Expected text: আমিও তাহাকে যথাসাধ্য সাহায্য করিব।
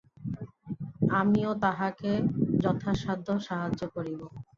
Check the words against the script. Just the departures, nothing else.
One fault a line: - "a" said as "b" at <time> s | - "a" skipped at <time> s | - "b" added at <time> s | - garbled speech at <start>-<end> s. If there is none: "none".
none